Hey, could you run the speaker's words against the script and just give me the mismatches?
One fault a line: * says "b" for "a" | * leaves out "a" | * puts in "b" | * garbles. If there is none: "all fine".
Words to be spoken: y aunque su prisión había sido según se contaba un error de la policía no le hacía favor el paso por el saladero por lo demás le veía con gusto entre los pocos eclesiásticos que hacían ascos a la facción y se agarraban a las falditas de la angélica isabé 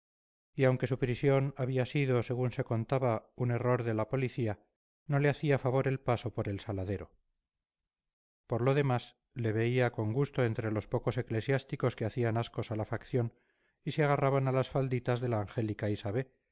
all fine